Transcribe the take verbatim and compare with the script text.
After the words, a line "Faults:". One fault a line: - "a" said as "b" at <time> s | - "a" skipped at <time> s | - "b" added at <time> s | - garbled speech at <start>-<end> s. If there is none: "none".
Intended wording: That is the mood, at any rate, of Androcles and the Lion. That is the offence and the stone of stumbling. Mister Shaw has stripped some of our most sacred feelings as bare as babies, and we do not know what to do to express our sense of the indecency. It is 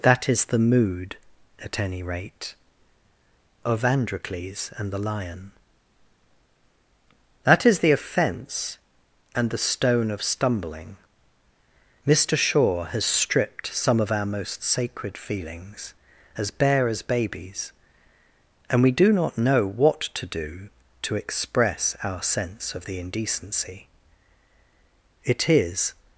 That is the mood, at any rate, of Androcles and the Lion. That is the offence and the stone of stumbling. Mister Shaw has stripped some of our most sacred feelings as bare as babies, and we do not know what to do to express our sense of the indecency. It is
Faults:
none